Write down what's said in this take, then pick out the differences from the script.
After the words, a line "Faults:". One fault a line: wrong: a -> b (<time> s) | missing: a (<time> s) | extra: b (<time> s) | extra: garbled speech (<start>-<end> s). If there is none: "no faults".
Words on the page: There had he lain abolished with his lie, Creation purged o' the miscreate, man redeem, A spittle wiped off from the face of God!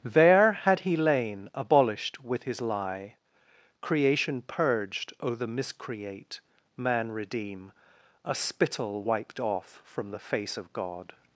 There had he lain abolished with his lie, Creation purged o' the miscreate, man redeem, A spittle wiped off from the face of God!
Faults:
no faults